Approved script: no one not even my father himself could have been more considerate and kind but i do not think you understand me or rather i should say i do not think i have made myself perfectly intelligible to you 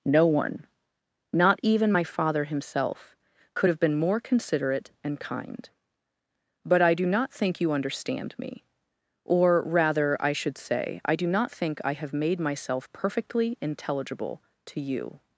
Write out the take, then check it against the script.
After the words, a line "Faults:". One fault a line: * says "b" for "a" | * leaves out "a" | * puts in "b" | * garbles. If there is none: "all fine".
no one not even my father himself could have been more considerate and kind but i do not think you understand me or rather i should say i do not think i have made myself perfectly intelligible to you
Faults:
all fine